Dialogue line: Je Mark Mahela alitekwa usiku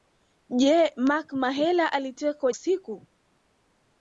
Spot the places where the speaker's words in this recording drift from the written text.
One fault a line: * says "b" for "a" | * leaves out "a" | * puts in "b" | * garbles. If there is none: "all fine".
all fine